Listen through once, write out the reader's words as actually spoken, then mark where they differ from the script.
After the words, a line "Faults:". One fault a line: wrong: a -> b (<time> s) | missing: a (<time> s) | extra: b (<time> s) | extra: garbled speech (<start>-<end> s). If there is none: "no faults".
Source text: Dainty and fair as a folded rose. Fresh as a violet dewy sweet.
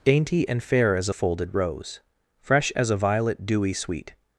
Dainty and fair as a folded rose. Fresh as a violet dewy sweet.
Faults:
no faults